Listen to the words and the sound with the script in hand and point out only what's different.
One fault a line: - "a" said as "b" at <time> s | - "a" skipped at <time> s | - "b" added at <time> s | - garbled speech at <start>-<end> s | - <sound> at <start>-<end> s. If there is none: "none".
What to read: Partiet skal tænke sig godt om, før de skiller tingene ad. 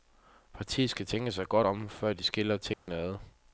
- dropout at 2.7-2.9 s